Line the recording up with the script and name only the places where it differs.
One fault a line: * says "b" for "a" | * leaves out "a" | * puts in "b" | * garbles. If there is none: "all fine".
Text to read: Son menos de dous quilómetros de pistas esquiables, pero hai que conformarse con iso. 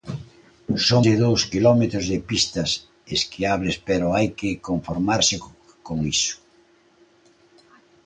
* leaves out "menos"